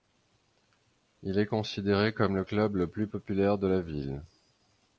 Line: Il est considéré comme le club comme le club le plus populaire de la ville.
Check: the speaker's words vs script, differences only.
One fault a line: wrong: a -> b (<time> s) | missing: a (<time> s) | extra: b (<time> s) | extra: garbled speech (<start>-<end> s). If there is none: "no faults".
missing: comme le club (2.8 s)